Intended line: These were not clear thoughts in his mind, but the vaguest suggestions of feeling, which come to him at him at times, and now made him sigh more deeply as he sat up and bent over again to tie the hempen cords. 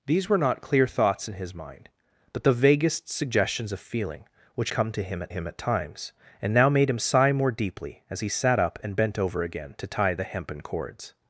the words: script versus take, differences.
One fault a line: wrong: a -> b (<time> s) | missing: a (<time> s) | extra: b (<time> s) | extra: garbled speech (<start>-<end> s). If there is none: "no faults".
no faults